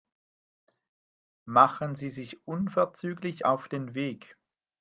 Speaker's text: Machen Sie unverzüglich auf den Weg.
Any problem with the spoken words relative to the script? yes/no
yes